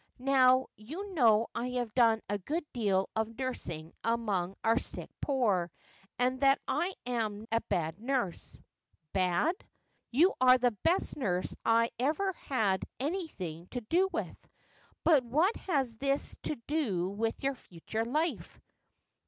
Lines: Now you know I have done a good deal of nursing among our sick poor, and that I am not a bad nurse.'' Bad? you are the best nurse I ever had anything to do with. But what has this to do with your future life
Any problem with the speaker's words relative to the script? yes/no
yes